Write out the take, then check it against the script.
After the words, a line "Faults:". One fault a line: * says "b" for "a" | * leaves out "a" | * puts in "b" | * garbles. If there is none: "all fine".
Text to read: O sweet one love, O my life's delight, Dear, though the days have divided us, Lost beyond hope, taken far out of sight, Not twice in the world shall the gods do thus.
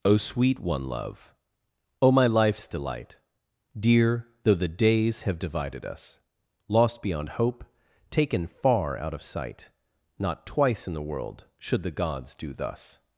O sweet one love, O my life's delight, Dear, though the days have divided us, Lost beyond hope, taken far out of sight, Not twice in the world should the gods do thus.
Faults:
* says "should" for "shall"